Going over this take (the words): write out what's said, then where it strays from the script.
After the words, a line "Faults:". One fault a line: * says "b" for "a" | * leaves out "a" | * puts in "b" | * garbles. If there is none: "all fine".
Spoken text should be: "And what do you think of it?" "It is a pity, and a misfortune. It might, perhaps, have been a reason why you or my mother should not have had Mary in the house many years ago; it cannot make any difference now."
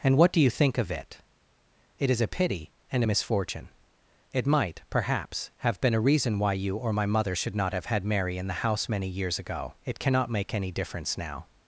"And what do you think of it?" "It is a pity, and a misfortune. It might, perhaps, have been a reason why you or my mother should not have had Mary in the house many years ago; it cannot make any difference now."
Faults:
all fine